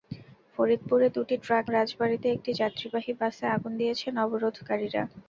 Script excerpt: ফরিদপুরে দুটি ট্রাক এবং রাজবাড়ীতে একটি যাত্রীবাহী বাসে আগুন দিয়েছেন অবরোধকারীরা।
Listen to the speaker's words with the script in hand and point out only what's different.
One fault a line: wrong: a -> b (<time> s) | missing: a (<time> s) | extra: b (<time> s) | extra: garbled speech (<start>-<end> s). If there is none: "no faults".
missing: এবং (1.6 s)